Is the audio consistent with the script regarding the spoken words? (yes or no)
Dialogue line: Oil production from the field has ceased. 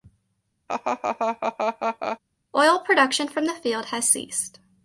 yes